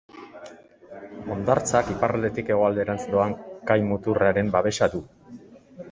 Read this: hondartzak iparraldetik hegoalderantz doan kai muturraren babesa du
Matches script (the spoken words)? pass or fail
pass